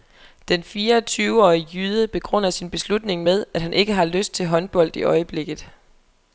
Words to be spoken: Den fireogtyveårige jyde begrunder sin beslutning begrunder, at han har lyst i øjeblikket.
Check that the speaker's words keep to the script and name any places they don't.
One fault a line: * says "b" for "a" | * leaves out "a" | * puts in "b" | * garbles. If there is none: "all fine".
* says "med" for "begrunder"
* puts in "ikke"
* puts in "til håndbold"